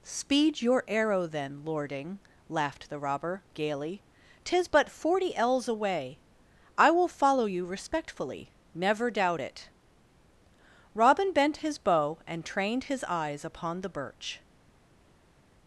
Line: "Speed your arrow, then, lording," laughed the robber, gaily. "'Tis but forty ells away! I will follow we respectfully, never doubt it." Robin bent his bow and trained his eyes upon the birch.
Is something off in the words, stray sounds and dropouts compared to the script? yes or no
yes